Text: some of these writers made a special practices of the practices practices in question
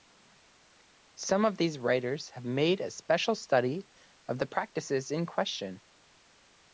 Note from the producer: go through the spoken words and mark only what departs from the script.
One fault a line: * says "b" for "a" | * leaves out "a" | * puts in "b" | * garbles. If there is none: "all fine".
* puts in "have"
* says "study" for "practices"
* leaves out "practices"